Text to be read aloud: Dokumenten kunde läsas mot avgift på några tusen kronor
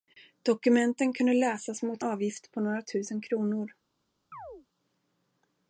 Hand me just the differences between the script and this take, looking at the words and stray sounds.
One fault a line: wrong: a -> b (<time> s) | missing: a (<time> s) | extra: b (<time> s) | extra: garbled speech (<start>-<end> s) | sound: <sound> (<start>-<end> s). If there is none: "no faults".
sound: chirp (4.3-4.7 s)